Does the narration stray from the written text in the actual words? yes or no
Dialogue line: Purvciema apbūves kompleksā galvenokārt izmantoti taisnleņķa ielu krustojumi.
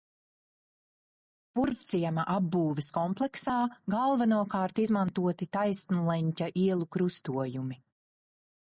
no